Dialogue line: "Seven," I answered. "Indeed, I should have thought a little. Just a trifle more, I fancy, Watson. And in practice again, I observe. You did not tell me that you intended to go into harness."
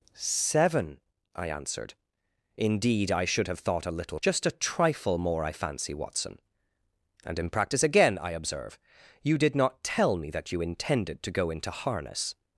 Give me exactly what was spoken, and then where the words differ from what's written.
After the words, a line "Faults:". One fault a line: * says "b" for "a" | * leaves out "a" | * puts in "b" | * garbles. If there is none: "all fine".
"Seven," I answered. "Indeed, I should have thought a little. Just a trifle more, I fancy, Watson. And in practice again, I observe. You did not tell me that you intended to go into harness."
Faults:
all fine